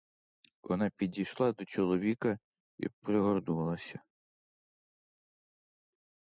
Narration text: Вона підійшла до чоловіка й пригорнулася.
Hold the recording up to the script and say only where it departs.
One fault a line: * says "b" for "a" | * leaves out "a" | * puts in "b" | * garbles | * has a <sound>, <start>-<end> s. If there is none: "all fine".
all fine